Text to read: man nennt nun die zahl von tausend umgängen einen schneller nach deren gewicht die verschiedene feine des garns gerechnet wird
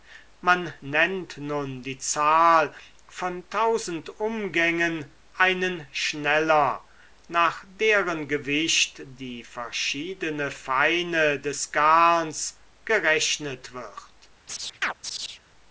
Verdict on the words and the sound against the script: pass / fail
fail